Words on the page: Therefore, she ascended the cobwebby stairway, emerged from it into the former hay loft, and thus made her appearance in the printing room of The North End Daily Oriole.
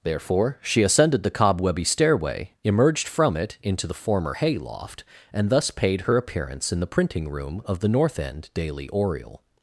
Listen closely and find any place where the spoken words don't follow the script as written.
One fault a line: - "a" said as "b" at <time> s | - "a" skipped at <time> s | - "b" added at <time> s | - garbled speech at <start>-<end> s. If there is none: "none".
- "made" said as "paid" at 5.7 s